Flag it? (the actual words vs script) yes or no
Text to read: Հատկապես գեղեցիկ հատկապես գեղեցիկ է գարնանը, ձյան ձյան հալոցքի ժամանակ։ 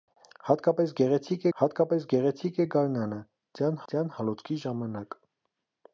no